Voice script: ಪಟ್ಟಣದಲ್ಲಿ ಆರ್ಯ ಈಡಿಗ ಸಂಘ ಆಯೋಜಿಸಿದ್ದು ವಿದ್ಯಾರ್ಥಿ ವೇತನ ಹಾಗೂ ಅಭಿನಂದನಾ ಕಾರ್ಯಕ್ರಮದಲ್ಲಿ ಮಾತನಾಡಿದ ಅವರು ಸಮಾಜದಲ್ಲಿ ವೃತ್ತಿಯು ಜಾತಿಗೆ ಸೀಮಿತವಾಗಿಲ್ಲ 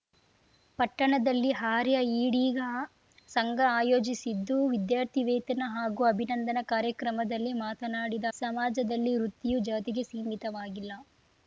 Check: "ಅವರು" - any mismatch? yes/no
yes